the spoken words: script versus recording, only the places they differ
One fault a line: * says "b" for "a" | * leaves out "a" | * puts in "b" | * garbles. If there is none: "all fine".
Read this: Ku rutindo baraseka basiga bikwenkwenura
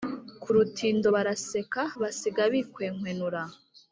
all fine